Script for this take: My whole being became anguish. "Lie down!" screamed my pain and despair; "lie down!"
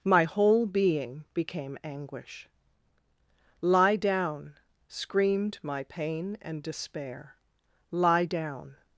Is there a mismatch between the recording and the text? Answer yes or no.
no